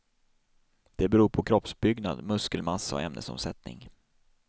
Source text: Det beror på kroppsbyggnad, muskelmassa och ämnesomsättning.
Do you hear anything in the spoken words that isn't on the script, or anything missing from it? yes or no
no